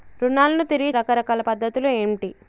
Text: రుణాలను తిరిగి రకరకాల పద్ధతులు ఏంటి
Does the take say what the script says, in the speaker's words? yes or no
yes